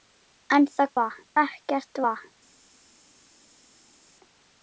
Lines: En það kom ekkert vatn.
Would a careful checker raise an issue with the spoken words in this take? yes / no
yes